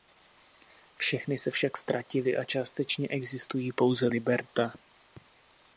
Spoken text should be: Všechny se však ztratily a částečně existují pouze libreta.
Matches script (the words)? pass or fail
pass